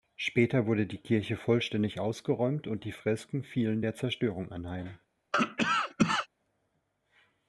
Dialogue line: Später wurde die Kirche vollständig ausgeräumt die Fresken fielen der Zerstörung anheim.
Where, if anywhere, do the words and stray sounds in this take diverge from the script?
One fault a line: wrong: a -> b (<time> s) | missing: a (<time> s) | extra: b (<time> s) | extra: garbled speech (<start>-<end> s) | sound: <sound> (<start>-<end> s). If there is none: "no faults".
extra: und (2.6 s)
sound: cough (5.3-6.3 s)